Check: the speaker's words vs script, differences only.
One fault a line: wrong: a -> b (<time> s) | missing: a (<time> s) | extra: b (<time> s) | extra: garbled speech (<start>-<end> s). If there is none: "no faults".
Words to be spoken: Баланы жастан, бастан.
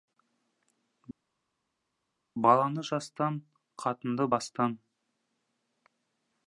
extra: қатынды (3.8 s)